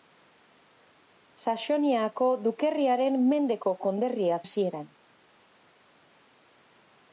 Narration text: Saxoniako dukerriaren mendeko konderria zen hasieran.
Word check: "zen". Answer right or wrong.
wrong